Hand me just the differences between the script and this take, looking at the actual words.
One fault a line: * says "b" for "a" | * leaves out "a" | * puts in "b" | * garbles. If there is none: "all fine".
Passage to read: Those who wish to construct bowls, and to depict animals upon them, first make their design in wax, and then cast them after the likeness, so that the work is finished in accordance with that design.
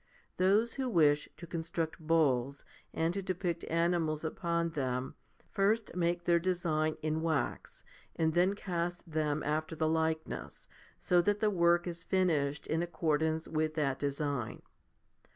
all fine